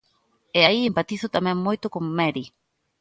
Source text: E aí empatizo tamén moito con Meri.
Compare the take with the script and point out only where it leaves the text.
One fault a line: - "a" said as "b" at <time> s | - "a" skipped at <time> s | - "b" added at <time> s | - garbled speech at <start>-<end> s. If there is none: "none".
none